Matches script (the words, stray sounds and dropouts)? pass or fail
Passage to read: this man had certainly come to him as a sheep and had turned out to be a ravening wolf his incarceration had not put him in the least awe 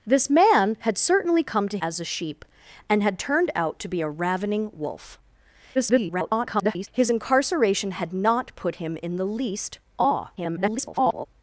fail